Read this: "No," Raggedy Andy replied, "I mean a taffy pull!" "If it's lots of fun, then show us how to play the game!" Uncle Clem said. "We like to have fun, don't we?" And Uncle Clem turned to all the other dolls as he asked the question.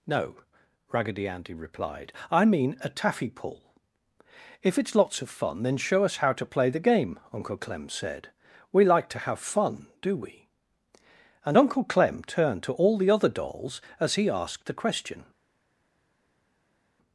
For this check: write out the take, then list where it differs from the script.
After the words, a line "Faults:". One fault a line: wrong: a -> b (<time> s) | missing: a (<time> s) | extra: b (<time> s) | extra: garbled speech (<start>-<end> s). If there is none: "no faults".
"No," Raggedy Andy replied, "I mean a taffy pull!" "If it's lots of fun, then show us how to play the game!" Uncle Clem said. "We like to have fun, do we?" And Uncle Clem turned to all the other dolls as he asked the question.
Faults:
wrong: don't -> do (10.0 s)